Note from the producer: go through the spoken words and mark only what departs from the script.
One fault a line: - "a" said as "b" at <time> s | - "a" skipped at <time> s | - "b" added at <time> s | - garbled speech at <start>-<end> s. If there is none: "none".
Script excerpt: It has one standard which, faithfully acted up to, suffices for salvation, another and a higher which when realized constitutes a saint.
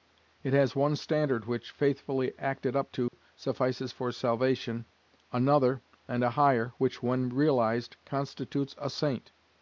none